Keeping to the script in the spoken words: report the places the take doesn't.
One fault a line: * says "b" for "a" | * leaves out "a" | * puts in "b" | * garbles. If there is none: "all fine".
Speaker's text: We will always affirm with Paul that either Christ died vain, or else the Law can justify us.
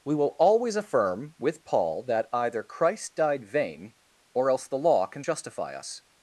all fine